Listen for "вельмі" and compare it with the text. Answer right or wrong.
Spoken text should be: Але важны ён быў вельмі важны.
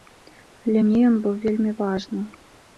right